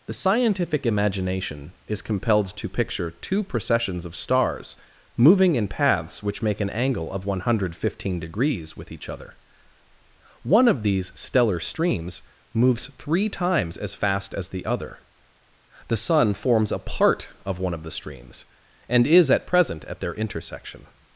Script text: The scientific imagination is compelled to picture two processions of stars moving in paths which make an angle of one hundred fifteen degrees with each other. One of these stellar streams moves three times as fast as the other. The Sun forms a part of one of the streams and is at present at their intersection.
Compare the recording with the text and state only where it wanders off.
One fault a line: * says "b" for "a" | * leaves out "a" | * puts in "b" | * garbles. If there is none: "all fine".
all fine